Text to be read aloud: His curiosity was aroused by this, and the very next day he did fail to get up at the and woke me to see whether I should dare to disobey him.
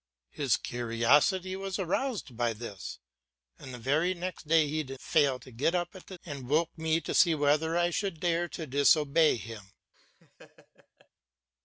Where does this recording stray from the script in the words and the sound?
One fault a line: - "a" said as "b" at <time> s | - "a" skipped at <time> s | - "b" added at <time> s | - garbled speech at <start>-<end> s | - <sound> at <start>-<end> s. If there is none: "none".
- laugh at 9.9-11.1 s